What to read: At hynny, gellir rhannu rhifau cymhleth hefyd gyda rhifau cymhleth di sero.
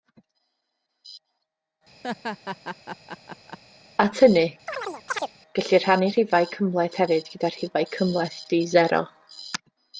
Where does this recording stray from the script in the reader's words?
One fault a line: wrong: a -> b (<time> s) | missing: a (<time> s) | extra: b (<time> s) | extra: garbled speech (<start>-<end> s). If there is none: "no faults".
no faults